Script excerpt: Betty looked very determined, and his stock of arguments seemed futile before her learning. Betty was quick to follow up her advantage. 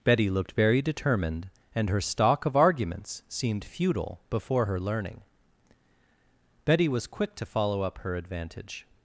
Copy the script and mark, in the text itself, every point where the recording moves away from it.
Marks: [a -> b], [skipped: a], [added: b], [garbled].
Betty looked very determined, and [his -> her] stock of arguments seemed futile before her learning. Betty was quick to follow up her advantage.